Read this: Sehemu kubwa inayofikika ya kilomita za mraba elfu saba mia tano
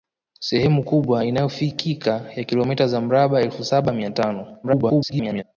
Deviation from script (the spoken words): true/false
true